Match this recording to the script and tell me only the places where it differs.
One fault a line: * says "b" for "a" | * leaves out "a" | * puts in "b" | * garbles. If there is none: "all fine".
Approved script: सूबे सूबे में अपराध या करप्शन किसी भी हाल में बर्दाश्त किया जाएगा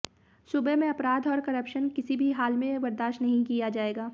* leaves out "सूबे"
* says "और" for "या"
* puts in "नहीं"